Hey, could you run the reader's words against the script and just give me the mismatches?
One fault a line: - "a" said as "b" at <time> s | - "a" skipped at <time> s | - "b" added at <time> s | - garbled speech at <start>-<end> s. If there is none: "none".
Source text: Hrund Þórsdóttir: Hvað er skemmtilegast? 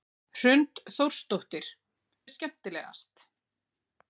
- "Hvað" skipped at 1.7 s